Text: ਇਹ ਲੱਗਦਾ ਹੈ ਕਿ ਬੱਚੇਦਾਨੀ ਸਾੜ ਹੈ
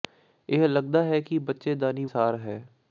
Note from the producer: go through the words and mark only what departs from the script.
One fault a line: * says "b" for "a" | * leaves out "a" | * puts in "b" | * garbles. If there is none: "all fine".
all fine